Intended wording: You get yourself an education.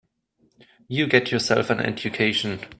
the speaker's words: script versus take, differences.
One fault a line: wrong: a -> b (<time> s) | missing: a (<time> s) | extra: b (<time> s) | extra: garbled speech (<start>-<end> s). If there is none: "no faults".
no faults